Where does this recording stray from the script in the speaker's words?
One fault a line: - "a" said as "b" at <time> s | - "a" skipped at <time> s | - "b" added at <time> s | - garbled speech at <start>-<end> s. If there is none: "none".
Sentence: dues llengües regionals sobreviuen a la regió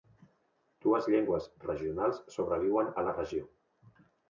none